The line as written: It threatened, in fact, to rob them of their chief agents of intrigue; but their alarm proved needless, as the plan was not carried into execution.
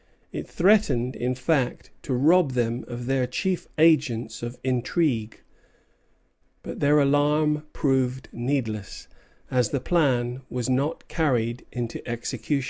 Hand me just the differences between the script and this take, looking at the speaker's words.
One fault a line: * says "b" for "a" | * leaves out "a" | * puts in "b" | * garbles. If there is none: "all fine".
all fine